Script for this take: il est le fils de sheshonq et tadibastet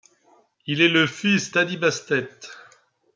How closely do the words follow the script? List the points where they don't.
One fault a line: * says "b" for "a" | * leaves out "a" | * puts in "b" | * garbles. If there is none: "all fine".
* leaves out "de sheshonq et"